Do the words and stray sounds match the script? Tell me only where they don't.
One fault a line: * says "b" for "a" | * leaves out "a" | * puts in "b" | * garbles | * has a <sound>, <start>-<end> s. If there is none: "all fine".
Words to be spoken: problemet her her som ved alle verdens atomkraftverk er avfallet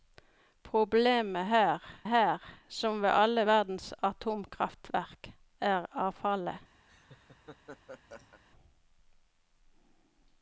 * has a laugh, 6.9-8.4 s